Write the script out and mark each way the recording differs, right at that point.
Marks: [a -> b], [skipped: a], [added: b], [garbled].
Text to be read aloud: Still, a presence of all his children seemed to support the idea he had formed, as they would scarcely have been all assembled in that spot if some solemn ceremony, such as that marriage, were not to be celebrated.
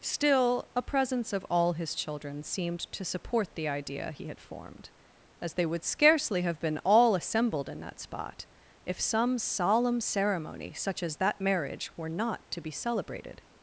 Still, a presence of all his children seemed to support the idea he had formed, as they would scarcely have been all assembled in that spot if some solemn ceremony, such as that marriage, were not to be celebrated.